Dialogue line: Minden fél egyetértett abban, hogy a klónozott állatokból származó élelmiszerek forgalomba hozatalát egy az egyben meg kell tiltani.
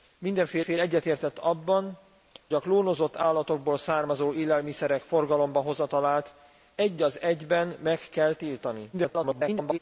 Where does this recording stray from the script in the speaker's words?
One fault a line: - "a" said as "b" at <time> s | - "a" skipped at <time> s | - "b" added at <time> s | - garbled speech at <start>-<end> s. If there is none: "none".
- "fél" added at 0.6 s
- "hogy" skipped at 2.0 s
- garbled speech at 8.9-9.8 s